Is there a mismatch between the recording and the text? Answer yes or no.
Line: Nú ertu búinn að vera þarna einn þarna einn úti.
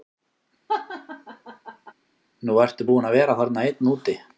yes